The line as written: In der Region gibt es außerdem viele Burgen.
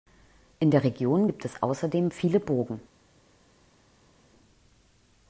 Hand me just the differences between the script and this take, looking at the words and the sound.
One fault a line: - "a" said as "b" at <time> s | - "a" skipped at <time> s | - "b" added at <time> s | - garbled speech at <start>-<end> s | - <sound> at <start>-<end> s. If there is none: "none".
none